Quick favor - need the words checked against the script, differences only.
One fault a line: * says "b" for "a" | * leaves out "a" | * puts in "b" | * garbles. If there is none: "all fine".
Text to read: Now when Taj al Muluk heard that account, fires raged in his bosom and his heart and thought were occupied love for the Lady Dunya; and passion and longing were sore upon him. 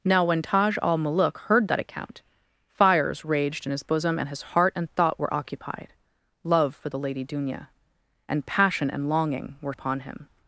* leaves out "sore"